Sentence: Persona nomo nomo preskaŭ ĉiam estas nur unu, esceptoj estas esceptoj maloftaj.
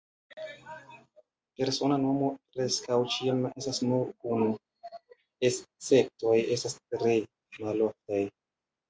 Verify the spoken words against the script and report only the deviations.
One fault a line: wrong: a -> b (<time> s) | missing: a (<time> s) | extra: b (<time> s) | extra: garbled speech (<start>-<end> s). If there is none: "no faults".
missing: nomo (2.3 s)
wrong: esceptoj -> tre (7.0 s)